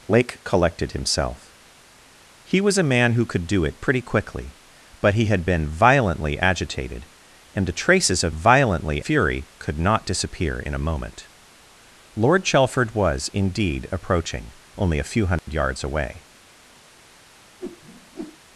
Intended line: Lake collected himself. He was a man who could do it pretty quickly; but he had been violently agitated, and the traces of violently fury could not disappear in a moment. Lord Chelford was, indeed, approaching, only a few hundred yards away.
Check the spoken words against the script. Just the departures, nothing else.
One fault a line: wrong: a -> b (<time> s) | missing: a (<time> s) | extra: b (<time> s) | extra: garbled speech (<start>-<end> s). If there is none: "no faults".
no faults